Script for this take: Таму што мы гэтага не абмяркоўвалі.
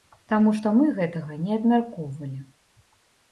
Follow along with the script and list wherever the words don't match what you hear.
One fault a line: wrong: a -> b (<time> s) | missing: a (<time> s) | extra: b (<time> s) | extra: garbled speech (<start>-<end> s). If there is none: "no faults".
no faults